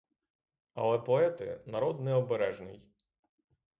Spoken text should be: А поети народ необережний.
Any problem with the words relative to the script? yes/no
yes